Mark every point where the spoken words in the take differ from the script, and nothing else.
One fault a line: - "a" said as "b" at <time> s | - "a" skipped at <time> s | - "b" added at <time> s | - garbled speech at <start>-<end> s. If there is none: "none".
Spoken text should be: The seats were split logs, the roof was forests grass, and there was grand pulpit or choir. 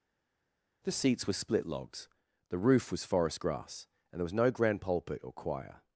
- "forests" said as "forest" at 3.0 s
- "no" added at 4.3 s